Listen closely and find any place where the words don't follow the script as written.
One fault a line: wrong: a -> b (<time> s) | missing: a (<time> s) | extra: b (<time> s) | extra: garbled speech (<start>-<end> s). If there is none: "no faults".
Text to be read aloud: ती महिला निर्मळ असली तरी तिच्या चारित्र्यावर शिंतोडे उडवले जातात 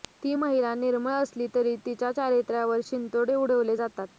no faults